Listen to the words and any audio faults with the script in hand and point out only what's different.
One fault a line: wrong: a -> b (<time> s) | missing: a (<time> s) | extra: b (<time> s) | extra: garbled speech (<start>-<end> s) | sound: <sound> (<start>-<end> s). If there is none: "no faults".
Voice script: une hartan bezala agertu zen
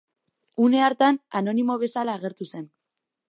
extra: anonimo (1.4 s)